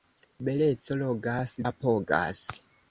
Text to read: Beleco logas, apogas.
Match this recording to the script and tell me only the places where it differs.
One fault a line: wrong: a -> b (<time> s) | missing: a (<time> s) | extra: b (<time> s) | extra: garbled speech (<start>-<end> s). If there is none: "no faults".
no faults